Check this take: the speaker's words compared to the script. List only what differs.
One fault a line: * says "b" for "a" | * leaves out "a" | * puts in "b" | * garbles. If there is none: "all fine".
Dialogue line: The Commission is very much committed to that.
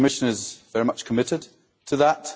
all fine